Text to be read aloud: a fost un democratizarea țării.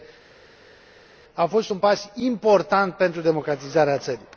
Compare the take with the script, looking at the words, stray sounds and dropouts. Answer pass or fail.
fail